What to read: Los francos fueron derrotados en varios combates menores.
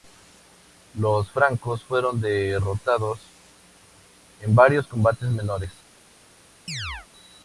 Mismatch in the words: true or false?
false